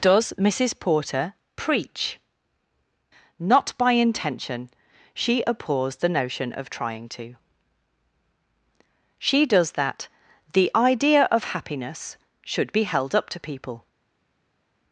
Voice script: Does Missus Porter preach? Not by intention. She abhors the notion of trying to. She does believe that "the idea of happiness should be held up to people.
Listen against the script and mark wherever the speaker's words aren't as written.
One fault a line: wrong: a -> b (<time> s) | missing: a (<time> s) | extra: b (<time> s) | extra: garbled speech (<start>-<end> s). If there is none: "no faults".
missing: believe (9.7 s)